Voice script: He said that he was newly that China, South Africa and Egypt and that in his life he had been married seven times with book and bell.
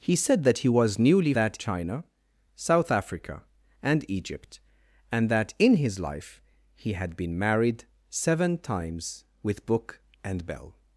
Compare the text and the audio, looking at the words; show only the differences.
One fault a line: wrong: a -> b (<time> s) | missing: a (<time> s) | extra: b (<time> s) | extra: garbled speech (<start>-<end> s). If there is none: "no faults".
no faults